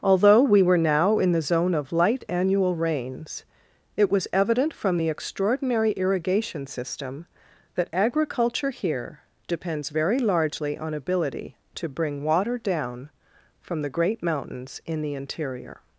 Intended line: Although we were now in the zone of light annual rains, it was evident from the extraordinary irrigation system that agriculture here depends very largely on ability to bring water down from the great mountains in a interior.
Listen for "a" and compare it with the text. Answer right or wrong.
wrong